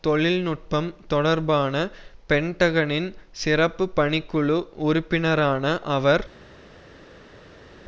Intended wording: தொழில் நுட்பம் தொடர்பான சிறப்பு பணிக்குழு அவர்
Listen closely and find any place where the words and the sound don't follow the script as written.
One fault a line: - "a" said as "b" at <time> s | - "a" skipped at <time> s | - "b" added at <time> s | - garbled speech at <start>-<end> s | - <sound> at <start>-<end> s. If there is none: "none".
- "பென்டகனின்" added at 2.3 s
- "உறுப்பினரான" added at 4.8 s